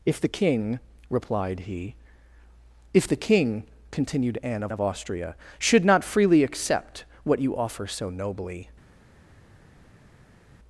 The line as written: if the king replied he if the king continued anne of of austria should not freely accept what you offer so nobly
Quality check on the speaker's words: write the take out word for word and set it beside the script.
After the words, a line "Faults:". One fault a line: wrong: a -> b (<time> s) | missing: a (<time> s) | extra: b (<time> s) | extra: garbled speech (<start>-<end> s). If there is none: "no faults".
if the king replied he if the king continued anne of of austria should not freely accept what you offer so nobly
Faults:
no faults